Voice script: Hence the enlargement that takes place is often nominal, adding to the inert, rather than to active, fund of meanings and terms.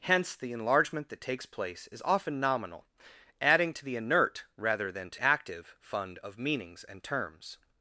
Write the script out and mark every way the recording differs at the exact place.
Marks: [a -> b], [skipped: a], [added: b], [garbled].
Hence the enlargement that takes place is often nominal, adding to the inert, rather than to active, fund of meanings and terms.